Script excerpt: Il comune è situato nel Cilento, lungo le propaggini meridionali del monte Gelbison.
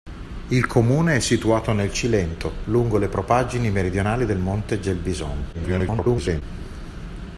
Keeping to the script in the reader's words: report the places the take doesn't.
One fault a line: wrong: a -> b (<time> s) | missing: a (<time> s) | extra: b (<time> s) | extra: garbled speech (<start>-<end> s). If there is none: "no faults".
extra: garbled speech (5.5-6.4 s)